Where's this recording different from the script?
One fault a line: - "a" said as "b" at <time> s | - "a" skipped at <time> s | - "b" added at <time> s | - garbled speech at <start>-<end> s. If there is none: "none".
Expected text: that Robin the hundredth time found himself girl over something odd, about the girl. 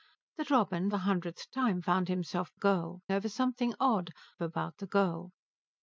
none